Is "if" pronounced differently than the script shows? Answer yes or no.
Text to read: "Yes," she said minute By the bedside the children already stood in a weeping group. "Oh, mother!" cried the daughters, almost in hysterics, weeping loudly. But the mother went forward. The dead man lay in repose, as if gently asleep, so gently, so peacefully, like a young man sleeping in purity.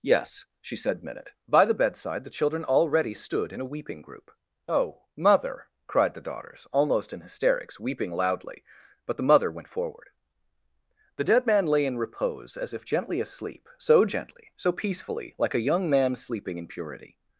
no